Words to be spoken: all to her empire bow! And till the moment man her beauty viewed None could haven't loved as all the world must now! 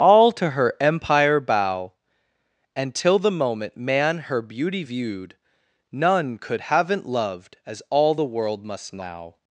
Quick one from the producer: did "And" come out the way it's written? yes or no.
yes